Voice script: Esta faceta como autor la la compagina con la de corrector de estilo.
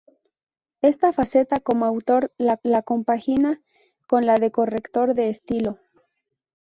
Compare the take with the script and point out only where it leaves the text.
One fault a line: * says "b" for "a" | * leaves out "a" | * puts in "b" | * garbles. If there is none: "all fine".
all fine